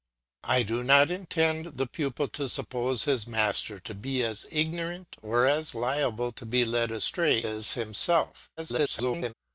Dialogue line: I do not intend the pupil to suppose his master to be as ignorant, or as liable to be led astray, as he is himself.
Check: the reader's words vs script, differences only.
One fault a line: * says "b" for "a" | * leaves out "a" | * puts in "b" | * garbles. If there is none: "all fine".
* leaves out "as he"
* garbles